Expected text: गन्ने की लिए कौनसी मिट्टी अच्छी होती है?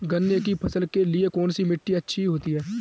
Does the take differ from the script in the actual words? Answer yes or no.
yes